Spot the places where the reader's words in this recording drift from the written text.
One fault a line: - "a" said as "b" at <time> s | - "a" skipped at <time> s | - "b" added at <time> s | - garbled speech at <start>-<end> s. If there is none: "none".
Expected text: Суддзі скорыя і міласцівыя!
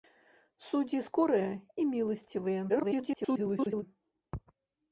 - garbled speech at 2.7-3.8 s